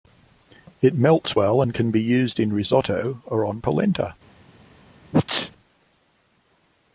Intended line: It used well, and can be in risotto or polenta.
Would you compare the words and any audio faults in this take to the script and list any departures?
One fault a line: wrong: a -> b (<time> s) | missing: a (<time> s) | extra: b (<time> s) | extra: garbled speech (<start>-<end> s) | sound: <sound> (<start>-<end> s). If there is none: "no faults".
wrong: used -> melts (0.9 s)
extra: used (2.0 s)
extra: on (3.4 s)
sound: sneeze (5.1-5.5 s)